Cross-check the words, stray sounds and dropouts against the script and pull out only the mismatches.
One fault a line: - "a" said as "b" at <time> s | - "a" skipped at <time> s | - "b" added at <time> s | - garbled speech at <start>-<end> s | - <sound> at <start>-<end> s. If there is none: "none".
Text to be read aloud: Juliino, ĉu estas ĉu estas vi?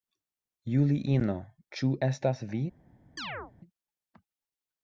- "ĉu estas" skipped at 2.4 s
- chirp at 3.2-3.5 s